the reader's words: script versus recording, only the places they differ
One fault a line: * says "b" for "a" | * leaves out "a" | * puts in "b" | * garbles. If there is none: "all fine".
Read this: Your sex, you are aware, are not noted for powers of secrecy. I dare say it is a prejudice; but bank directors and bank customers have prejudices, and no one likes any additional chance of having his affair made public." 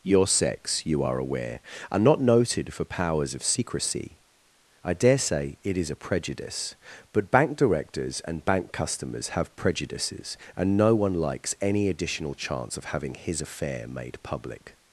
all fine